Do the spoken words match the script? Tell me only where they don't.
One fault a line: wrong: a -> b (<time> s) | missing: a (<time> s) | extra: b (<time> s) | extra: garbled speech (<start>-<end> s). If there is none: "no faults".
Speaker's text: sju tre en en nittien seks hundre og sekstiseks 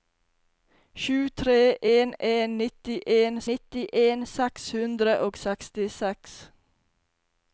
extra: nittien (3.5 s)